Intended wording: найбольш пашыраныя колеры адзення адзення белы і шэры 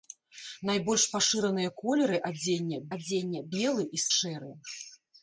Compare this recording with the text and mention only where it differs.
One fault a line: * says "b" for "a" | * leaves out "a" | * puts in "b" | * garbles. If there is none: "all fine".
all fine